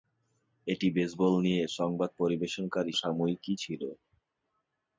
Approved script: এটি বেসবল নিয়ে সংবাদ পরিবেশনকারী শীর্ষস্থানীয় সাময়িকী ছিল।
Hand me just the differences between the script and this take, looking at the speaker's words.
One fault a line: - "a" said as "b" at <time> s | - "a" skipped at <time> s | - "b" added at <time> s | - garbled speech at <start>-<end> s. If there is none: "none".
- "শীর্ষস্থানীয়" skipped at 2.9 s